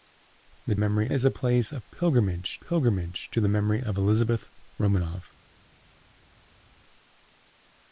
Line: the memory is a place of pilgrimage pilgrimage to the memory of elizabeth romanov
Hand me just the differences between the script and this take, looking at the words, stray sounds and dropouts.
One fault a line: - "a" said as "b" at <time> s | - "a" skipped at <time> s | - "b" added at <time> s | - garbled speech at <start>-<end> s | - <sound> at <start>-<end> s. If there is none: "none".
none